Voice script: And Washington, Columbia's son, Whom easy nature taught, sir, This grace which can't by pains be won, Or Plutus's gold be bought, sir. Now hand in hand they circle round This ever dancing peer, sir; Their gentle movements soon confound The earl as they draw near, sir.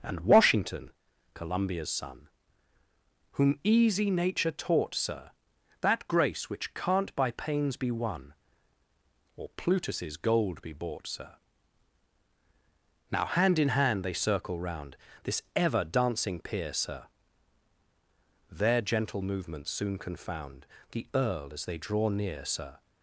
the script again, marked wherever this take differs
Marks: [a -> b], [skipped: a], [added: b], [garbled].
And Washington, Columbia's son, Whom easy nature taught, sir, [This -> That] grace which can't by pains be won, Or Plutus's gold be bought, sir. Now hand in hand they circle round This ever dancing peer, sir; Their gentle movements soon confound The earl as they draw near, sir.